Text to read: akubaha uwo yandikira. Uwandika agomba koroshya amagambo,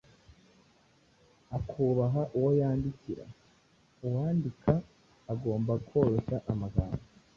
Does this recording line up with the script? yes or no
yes